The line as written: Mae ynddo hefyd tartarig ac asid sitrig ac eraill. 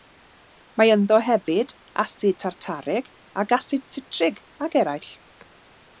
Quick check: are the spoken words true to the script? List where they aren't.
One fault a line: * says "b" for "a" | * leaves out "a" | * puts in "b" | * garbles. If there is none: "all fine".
* puts in "asid"